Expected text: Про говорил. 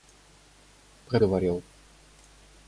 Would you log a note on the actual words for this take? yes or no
no